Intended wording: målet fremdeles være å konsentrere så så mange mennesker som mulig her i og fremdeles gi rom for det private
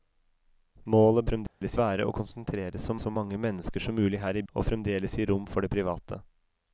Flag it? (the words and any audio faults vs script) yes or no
yes